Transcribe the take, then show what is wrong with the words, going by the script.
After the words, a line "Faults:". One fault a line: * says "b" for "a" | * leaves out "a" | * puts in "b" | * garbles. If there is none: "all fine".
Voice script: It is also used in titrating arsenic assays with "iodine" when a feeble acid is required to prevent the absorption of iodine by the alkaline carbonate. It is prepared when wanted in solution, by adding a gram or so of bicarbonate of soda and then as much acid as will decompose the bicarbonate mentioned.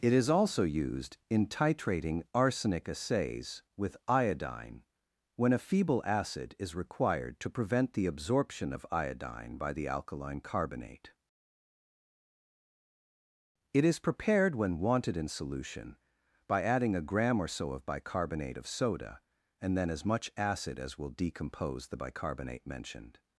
It is also used in titrating arsenic assays with "iodine" when a feeble acid is required to prevent the absorption of iodine by the alkaline carbonate. It is prepared when wanted in solution, by adding a gram or so of bicarbonate of soda and then as much acid as will decompose the bicarbonate mentioned.
Faults:
all fine